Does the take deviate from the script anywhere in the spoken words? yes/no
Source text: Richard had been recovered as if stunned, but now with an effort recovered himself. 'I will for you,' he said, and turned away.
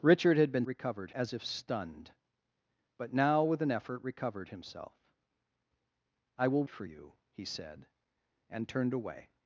no